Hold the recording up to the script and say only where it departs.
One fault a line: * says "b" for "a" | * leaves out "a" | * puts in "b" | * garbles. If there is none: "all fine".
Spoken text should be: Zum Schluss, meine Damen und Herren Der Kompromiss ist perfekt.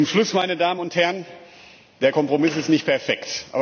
* puts in "nicht"